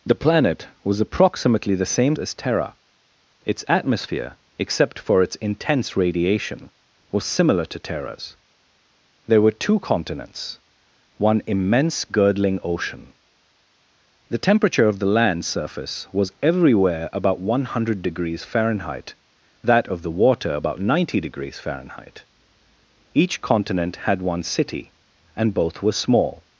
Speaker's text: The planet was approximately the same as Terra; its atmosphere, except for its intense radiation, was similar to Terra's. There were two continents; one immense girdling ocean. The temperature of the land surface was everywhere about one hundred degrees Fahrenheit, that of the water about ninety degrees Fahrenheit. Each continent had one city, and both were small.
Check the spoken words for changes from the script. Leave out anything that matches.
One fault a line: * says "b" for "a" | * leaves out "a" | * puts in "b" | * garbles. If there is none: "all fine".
all fine